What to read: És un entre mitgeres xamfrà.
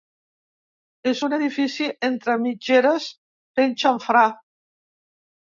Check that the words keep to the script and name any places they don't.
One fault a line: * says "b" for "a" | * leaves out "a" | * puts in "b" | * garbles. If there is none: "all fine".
* puts in "edifici"
* puts in "fent"